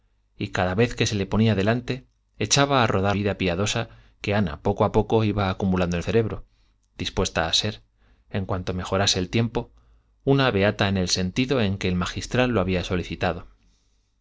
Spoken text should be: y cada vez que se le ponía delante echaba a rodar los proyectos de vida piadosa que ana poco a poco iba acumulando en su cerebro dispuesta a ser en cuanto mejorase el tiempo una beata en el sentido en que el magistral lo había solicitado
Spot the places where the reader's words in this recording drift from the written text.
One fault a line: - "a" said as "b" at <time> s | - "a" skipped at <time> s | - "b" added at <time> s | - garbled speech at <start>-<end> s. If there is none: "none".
- "los proyectos de" skipped at 3.2 s
- "su" skipped at 6.0 s